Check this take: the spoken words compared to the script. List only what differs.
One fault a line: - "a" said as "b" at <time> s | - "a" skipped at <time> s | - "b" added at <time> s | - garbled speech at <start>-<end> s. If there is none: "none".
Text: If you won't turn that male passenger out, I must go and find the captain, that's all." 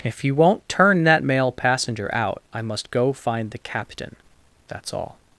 - "and" skipped at 3.1 s